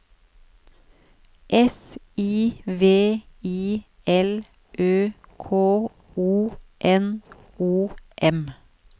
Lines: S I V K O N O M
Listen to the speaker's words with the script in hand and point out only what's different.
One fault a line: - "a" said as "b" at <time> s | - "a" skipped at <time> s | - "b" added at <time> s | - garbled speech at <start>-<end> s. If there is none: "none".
- "I L Ø" added at 3.4 s